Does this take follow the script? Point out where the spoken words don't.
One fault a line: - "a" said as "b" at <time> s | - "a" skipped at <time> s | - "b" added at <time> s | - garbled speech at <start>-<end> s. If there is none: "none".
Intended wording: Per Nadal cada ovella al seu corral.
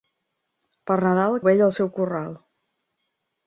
- "cada" skipped at 1.4 s